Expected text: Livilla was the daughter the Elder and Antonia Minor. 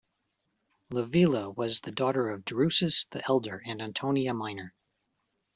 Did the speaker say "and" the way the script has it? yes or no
yes